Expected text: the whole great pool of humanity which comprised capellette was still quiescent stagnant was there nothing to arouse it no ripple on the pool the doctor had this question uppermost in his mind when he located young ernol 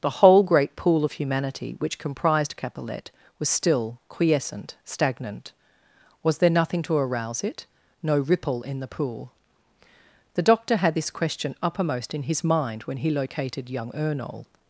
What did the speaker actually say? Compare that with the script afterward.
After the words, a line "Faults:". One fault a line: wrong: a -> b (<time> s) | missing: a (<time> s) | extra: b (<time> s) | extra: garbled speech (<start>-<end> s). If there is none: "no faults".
the whole great pool of humanity which comprised capellette was still quiescent stagnant was there nothing to arouse it no ripple in the pool the doctor had this question uppermost in his mind when he located young ernol
Faults:
wrong: on -> in (8.6 s)